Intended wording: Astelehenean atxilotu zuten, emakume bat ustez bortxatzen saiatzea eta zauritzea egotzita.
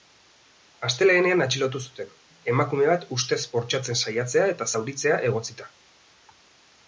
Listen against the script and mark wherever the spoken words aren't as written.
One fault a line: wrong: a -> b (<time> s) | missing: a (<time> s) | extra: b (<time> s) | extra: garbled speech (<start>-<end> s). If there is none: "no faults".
no faults